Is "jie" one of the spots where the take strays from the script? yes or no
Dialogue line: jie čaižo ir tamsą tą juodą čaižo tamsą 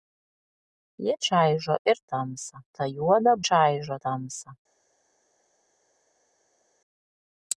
no